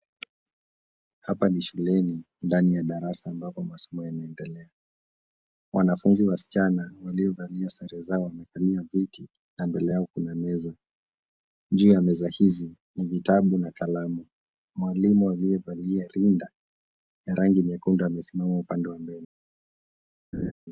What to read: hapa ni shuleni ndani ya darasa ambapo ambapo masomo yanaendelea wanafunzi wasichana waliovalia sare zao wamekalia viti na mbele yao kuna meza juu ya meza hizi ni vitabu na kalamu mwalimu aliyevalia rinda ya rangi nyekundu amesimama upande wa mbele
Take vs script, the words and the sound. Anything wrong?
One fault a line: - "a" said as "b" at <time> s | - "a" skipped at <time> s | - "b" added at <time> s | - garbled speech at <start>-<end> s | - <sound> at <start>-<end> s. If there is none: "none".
- "ambapo" skipped at 3.6 s
- laugh at 20.3-20.5 s